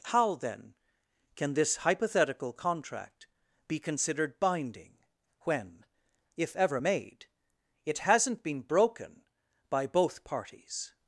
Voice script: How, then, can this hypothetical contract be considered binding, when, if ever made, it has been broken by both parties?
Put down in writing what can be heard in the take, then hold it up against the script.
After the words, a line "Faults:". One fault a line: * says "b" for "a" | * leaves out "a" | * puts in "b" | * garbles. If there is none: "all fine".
How, then, can this hypothetical contract be considered binding, when, if ever made, it hasn't been broken by both parties?
Faults:
* says "hasn't" for "has"